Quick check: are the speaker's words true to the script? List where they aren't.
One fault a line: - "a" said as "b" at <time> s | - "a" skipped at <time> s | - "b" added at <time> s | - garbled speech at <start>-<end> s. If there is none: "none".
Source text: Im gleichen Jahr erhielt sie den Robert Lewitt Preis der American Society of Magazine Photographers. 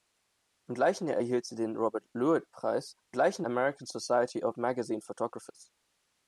- "der" said as "gleichen" at 3.1 s